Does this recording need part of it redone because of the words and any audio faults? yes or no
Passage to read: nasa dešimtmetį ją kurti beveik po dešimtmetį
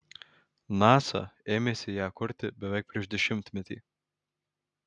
yes